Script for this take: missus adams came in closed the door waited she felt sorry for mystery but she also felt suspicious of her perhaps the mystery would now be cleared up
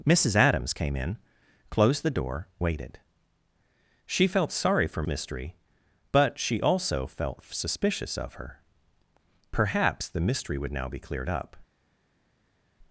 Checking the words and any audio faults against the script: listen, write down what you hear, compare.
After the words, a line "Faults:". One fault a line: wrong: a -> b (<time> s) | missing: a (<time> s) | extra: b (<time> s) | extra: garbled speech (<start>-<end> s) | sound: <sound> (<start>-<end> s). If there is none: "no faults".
missus adams came in closed the door waited she felt sorry for mystery but she also felt suspicious of her perhaps the mystery would now be cleared up
Faults:
no faults